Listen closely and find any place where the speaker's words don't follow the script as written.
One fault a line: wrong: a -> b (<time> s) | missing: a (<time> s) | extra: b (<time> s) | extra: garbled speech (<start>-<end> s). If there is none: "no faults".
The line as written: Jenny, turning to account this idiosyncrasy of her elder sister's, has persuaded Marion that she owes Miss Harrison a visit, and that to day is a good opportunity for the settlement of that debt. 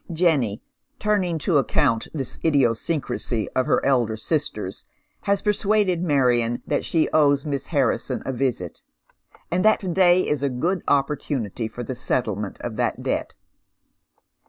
no faults